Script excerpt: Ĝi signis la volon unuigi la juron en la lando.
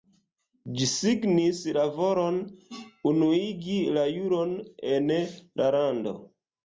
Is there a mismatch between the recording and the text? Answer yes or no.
no